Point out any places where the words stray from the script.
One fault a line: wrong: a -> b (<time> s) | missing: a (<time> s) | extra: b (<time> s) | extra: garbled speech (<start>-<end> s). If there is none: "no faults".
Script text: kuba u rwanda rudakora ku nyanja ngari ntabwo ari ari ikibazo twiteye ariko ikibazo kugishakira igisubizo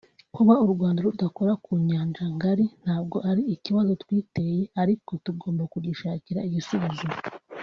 missing: ari (3.4 s)
wrong: ikibazo -> tugomba (5.2 s)